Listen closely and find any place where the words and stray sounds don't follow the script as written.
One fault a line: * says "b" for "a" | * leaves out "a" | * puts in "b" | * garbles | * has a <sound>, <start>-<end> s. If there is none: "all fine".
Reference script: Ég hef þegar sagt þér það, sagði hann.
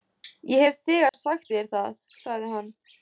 * has a dropout, 1.1-1.1 s